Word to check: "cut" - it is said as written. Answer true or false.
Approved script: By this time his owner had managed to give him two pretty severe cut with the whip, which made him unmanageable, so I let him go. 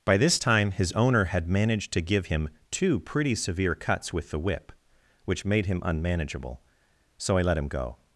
false